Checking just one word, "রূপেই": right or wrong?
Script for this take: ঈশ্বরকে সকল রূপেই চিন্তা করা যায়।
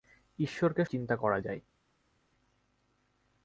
wrong